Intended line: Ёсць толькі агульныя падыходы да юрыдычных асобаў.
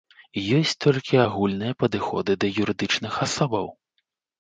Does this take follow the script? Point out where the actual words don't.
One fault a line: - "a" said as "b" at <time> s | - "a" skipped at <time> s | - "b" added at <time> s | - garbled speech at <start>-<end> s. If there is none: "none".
none